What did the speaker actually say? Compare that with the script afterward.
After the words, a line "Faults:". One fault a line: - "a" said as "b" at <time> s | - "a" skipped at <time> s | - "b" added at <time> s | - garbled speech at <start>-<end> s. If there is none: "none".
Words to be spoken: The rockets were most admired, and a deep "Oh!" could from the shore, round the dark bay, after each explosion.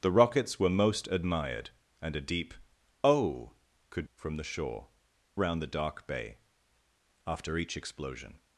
The rockets were most admired, and a deep "Oh!" could from the shore, round the dark bay, after each explosion.
Faults:
none